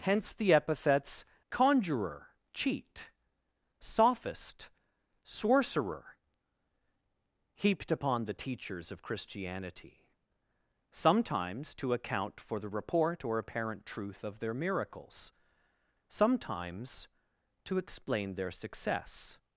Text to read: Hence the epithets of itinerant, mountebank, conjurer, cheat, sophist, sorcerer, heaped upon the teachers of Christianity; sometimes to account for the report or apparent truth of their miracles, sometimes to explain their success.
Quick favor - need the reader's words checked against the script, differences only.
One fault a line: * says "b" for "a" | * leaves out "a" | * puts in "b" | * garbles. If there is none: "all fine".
* leaves out "of itinerant mountebank"